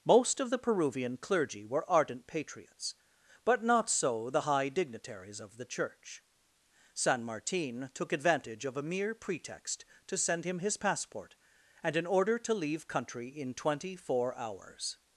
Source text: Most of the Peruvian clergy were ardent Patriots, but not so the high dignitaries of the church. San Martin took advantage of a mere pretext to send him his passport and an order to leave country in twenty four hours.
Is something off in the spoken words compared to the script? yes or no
no